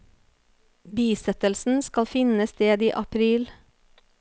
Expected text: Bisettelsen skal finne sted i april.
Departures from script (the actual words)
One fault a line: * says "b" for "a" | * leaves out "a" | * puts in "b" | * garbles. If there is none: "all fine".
all fine